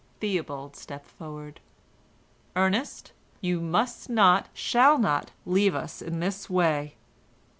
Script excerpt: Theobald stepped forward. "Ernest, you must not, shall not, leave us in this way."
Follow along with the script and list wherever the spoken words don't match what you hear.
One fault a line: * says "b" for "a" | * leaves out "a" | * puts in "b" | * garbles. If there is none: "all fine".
all fine